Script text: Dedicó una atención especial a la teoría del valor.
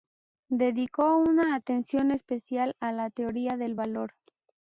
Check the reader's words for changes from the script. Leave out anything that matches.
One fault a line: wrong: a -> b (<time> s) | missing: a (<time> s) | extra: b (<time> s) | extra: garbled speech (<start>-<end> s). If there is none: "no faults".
no faults